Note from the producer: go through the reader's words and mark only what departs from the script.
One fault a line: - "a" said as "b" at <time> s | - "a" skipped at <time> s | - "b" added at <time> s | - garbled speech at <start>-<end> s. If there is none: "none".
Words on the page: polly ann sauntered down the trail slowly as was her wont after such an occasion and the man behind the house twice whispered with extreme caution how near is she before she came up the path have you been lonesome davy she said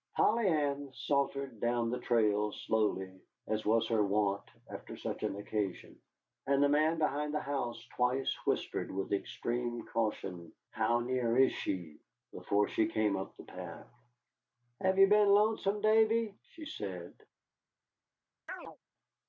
none